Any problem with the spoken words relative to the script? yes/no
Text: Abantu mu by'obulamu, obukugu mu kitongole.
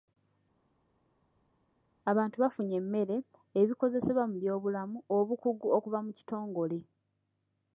yes